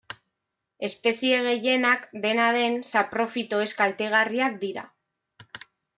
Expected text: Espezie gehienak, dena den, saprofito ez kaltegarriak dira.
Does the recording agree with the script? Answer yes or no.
yes